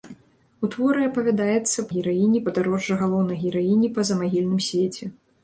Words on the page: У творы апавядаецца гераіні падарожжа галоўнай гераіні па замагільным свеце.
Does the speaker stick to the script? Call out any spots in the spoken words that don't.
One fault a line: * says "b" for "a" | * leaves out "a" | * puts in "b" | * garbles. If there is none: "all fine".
all fine